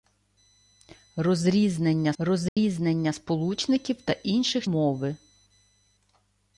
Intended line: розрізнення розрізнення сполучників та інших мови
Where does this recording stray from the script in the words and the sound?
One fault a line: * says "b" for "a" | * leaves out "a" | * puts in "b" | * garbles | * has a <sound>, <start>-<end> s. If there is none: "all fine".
* has a dropout, 2.5-2.6 s